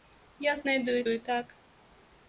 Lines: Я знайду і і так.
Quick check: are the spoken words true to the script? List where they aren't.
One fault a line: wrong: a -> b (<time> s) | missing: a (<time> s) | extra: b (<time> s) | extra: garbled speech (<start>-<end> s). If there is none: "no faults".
no faults